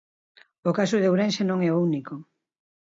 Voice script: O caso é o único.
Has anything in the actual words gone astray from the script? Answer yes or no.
yes